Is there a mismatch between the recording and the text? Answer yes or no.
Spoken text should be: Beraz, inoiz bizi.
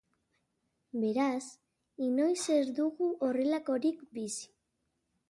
yes